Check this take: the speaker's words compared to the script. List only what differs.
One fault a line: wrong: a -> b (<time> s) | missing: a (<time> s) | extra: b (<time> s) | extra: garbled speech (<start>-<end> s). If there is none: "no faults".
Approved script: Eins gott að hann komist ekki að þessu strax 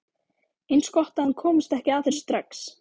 no faults